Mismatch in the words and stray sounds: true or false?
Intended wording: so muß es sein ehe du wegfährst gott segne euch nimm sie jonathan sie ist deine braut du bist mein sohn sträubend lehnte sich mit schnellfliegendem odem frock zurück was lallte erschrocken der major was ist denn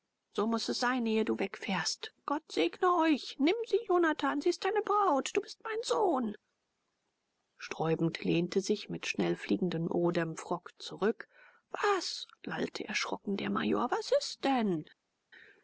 false